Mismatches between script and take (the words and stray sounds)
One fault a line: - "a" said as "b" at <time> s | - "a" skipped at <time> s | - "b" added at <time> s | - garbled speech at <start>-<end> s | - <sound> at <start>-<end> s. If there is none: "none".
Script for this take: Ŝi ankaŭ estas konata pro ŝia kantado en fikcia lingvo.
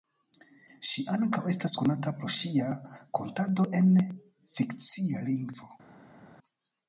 none